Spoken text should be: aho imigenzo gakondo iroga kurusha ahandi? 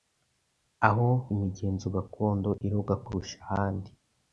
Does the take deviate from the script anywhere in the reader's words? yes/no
no